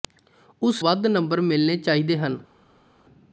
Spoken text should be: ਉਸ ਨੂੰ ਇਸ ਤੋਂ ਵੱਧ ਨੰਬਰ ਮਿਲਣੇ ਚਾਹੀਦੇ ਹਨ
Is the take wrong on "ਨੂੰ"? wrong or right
wrong